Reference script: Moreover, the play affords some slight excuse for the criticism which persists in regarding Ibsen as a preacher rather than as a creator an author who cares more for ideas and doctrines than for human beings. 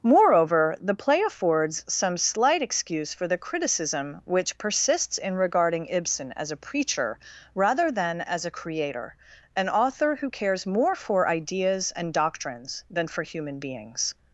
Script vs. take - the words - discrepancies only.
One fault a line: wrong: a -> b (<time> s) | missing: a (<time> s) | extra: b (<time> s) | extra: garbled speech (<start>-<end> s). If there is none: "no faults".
no faults